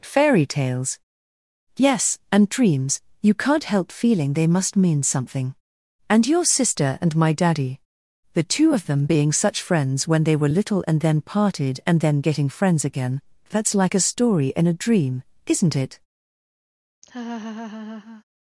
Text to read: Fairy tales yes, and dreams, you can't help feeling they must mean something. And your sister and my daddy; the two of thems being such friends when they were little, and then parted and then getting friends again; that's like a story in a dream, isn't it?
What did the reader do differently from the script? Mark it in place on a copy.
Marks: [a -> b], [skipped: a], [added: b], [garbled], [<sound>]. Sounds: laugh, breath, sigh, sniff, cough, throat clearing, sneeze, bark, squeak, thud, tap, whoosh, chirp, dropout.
Fairy tales yes, and dreams, you can't help feeling they must mean something. And your sister and my daddy; the two of [thems -> them] being such friends when they were little, and then parted and then getting friends again; that's like a story in a dream, isn't it? [laugh]